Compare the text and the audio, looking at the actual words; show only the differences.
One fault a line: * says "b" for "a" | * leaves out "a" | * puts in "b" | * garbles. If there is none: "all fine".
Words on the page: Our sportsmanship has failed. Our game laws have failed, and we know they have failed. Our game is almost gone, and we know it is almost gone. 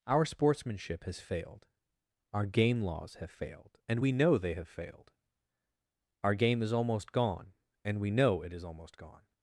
all fine